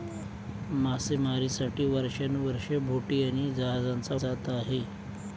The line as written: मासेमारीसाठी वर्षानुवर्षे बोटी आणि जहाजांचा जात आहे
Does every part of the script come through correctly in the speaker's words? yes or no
yes